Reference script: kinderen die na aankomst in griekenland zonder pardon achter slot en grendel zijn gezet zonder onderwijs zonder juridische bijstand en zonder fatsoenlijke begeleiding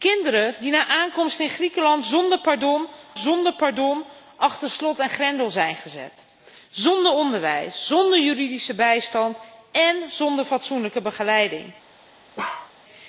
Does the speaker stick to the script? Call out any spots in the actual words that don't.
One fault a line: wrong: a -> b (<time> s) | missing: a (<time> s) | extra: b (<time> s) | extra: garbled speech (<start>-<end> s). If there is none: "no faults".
extra: zonder pardon (3.2 s)